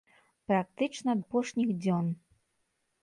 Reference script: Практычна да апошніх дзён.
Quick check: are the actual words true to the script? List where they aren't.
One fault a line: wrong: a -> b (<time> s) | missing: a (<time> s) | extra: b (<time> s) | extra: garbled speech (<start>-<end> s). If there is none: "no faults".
missing: да (1.1 s)